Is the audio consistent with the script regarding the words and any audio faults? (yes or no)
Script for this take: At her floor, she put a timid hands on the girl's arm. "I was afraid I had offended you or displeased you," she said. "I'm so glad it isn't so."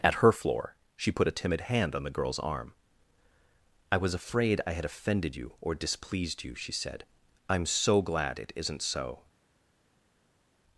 no